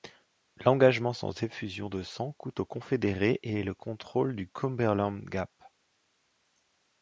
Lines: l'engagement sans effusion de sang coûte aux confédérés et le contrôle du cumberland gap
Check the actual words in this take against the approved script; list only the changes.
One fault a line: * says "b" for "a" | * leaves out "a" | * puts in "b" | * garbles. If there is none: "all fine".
all fine